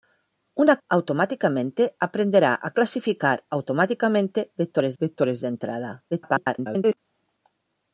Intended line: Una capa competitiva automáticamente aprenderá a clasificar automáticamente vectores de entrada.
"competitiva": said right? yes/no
no